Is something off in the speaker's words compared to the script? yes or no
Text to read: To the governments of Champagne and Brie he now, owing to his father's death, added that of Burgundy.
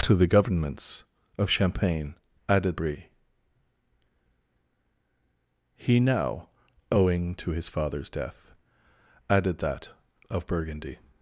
yes